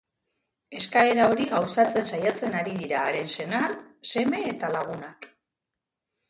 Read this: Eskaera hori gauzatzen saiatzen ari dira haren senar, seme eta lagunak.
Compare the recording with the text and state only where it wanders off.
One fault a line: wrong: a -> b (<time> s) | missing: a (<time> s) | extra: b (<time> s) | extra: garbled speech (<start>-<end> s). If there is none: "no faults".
no faults